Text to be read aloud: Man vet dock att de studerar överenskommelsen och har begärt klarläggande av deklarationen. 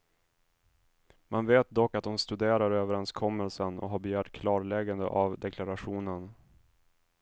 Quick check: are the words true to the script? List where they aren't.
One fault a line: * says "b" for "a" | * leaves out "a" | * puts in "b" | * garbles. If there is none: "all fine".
all fine